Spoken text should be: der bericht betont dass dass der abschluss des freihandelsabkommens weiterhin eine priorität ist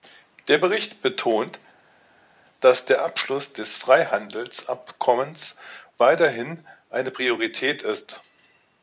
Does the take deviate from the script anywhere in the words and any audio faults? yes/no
yes